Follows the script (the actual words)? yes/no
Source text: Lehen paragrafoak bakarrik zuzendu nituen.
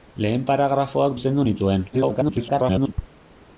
no